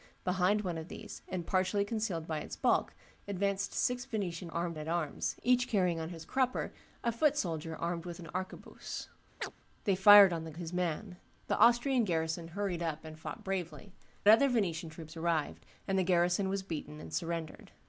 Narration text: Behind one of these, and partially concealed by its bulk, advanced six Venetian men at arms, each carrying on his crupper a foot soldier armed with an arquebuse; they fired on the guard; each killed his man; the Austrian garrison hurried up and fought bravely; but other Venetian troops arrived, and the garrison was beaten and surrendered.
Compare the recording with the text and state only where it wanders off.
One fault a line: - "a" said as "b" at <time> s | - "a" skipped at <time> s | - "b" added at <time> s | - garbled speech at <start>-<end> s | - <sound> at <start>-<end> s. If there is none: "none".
- "men" said as "armed" at 4.5 s
- chirp at 9.4-9.5 s
- "guard each killed" skipped at 10.5 s
- "but" skipped at 13.9 s